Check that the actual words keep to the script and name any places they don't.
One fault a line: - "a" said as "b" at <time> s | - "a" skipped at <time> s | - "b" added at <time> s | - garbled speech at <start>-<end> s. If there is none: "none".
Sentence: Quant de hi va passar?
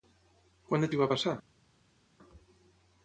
none